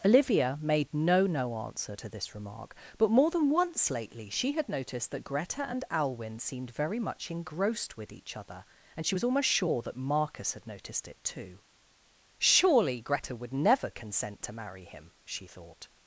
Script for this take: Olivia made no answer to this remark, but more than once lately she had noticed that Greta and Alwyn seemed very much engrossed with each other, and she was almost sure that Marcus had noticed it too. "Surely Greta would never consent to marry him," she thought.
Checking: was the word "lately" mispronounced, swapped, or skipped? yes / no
no